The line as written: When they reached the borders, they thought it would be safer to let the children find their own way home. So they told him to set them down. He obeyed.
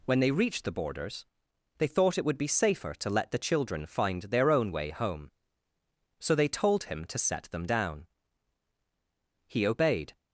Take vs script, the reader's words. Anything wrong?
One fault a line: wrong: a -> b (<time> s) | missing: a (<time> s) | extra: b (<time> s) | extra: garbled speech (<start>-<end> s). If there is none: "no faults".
no faults